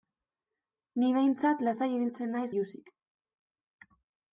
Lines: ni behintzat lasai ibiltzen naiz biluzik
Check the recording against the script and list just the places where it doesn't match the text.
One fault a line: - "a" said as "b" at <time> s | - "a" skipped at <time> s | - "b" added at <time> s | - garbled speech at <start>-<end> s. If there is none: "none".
none